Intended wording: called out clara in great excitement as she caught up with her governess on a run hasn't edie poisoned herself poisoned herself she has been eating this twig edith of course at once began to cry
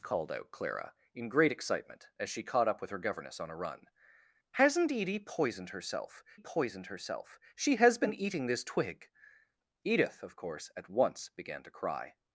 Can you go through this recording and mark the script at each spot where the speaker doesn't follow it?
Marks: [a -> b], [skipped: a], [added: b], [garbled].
called out clara in great excitement as she caught up with her governess on a run hasn't edie poisoned herself poisoned herself she has been eating this twig edith of course at once began to cry